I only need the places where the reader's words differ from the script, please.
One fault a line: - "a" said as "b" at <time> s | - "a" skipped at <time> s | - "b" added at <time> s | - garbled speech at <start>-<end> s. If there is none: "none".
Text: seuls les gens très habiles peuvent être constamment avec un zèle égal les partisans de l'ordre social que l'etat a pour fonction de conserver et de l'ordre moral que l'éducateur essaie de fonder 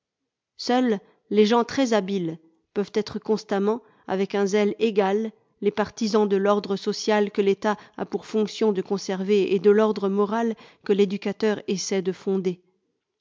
none